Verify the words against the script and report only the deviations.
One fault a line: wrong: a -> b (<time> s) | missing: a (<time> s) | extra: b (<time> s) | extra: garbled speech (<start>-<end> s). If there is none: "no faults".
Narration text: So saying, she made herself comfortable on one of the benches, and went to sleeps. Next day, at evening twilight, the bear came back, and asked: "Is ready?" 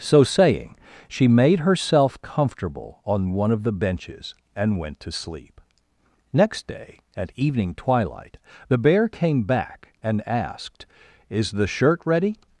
wrong: sleeps -> sleep (5.1 s)
extra: the shirt (11.5 s)